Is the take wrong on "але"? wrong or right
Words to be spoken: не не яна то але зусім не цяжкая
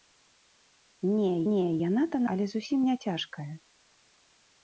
right